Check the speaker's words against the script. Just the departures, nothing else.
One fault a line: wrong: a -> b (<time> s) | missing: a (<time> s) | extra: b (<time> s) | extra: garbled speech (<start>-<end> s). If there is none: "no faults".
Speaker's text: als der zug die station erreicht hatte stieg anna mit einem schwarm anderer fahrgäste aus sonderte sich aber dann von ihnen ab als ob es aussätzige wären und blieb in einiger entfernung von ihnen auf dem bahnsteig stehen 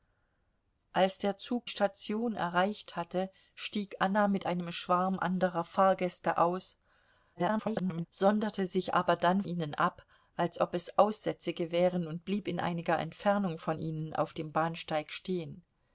missing: die (1.7 s)
extra: garbled speech (7.3-8.1 s)
missing: von (9.4 s)